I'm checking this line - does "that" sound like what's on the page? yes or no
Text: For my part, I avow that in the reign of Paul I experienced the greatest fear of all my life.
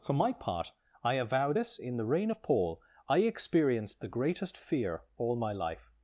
no